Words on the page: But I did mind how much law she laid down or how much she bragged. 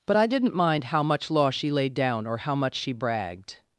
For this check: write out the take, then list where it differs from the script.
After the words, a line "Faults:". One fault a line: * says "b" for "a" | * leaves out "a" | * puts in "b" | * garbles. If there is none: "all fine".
But I didn't mind how much law she laid down or how much she bragged.
Faults:
* says "didn't" for "did"